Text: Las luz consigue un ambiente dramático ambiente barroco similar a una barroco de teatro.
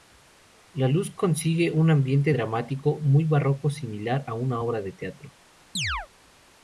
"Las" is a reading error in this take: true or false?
true